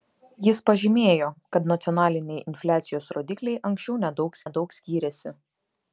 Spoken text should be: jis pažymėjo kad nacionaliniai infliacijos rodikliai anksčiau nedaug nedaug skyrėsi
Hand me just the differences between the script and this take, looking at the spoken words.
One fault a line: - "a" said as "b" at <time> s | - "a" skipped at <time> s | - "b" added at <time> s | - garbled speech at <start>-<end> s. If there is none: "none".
none